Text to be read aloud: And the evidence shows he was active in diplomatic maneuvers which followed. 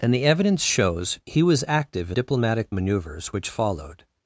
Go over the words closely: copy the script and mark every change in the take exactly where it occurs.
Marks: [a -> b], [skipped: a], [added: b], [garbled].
And the evidence shows he was active in diplomatic maneuvers which followed.